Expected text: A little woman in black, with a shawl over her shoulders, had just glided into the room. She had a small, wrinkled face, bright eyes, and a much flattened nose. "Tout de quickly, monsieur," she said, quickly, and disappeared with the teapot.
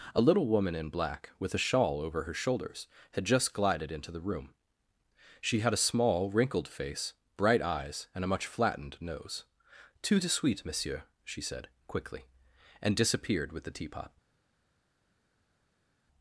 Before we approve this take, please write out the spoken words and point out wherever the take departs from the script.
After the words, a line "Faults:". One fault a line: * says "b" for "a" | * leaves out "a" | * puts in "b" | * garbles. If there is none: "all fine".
A little woman in black, with a shawl over her shoulders, had just glided into the room. She had a small, wrinkled face, bright eyes, and a much flattened nose. "Tout de suite, monsieur," she said, quickly, and disappeared with the teapot.
Faults:
* says "suite" for "quickly"